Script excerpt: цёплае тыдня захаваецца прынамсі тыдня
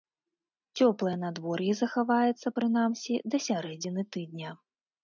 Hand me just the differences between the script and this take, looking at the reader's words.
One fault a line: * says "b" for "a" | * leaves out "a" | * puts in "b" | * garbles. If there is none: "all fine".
* says "надвор'е" for "тыдня"
* puts in "да сярэдзіны"